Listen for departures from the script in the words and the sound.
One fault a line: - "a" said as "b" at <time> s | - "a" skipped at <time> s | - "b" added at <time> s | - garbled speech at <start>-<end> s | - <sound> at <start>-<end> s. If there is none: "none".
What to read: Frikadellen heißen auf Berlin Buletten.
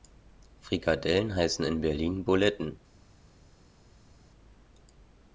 - "auf" said as "in" at 1.6 s